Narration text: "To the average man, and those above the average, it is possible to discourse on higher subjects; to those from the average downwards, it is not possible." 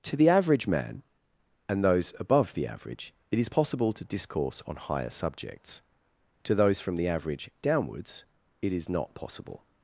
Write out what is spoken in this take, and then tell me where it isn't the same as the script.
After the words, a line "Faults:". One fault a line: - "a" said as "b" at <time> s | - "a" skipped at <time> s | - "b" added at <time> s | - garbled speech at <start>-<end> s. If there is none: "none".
"To the average man, and those above the average, it is possible to discourse on higher subjects; to those from the average downwards, it is not possible."
Faults:
none